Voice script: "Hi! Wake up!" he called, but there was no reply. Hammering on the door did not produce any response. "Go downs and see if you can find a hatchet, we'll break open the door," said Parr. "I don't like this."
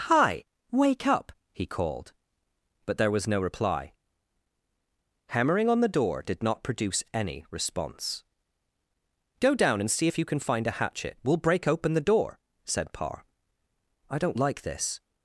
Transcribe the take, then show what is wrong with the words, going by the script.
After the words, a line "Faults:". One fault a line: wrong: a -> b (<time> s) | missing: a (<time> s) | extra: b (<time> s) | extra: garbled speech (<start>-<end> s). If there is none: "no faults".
"Hi! Wake up!" he called, but there was no reply. Hammering on the door did not produce any response. "Go down and see if you can find a hatchet, we'll break open the door," said Parr. "I don't like this."
Faults:
wrong: downs -> down (9.5 s)